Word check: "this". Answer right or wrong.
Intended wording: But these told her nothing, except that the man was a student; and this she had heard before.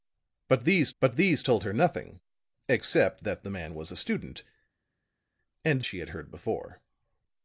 wrong